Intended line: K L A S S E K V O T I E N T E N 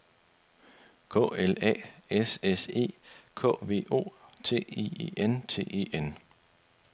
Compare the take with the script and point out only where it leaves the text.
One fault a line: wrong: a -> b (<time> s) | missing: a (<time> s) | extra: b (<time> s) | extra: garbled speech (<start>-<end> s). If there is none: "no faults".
no faults